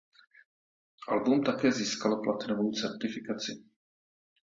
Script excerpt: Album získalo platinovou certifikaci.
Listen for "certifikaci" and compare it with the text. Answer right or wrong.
right